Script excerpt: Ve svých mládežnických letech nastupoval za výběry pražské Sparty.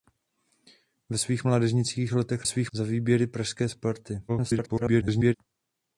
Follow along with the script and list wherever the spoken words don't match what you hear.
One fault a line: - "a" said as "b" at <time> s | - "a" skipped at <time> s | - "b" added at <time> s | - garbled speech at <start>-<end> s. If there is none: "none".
- "nastupoval" said as "svých" at 2.4 s
- garbled speech at 4.3-5.3 s